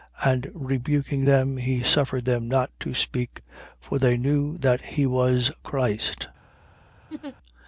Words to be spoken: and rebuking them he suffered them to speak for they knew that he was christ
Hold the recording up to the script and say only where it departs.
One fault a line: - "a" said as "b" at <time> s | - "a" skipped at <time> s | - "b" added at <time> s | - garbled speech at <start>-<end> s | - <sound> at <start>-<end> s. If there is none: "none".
- "not" added at 2.5 s
- laugh at 7.1-7.4 s